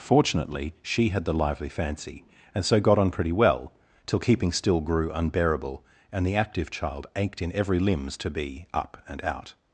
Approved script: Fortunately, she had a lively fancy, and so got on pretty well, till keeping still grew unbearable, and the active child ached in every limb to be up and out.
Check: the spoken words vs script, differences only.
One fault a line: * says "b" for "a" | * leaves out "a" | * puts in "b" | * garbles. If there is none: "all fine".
* says "the" for "a"
* says "limbs" for "limb"